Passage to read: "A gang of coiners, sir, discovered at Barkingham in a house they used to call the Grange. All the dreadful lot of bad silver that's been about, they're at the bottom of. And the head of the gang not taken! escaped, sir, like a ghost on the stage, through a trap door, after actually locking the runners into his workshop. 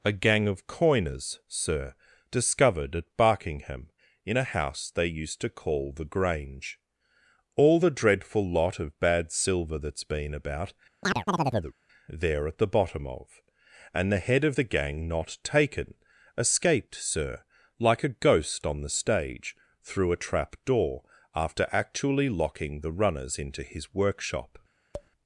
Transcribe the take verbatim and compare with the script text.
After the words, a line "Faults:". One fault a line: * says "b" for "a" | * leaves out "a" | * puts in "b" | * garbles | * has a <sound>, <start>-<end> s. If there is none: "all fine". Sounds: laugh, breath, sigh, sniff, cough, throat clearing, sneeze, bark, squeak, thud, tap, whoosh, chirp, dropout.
"A gang of coiners, sir, discovered at Barkingham in a house they used to call the Grange. All the dreadful lot of bad silver that's been about, they're at the bottom of. And the head of the gang not taken! escaped, sir, like a ghost on the stage, through a trap door, after actually locking the runners into his workshop.
Faults:
* has a chirp, 11.0-11.7 s
* has a tap, 24.9-25.1 s